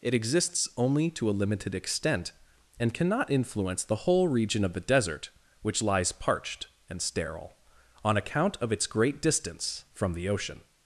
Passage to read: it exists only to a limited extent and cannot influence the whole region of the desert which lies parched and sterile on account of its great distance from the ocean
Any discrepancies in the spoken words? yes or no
no